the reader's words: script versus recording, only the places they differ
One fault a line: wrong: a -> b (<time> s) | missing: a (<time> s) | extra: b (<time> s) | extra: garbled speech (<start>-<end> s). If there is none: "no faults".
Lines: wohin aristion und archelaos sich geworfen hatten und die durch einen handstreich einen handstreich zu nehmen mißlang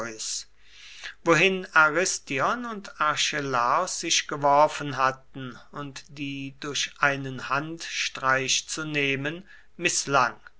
missing: einen handstreich (8.7 s)